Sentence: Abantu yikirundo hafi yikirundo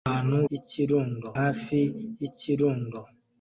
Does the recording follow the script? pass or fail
pass